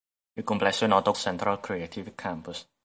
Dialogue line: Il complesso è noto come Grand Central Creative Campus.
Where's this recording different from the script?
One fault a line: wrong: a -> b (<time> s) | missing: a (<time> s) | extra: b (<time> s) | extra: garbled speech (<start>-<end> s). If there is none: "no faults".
missing: come Grand (1.1 s)